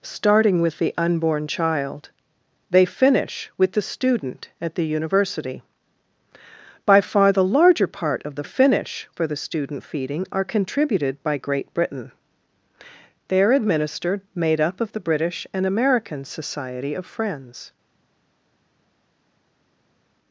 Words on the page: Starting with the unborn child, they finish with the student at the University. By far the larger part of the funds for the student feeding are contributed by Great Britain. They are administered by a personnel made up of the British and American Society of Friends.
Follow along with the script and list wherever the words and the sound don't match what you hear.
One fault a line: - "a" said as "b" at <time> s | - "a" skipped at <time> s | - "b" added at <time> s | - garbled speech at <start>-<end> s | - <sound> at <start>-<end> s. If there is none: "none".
- "funds" said as "finish" at 8.4 s
- "by a personnel" skipped at 14.2 s